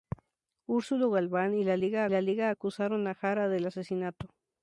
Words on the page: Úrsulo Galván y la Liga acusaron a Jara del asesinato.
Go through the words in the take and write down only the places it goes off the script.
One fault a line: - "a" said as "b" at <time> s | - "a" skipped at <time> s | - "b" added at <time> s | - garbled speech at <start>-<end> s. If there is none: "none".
- "la Liga" added at 2.1 s